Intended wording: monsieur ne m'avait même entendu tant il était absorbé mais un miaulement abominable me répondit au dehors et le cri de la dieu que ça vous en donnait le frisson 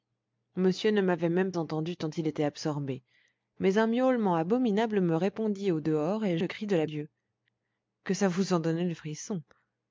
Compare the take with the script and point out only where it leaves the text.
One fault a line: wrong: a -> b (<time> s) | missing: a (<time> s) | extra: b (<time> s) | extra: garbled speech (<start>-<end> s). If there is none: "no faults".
no faults